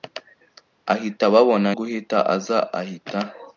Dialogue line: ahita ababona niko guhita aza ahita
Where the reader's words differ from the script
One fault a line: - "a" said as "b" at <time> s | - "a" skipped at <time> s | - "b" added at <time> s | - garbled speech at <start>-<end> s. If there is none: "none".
- "niko" skipped at 1.7 s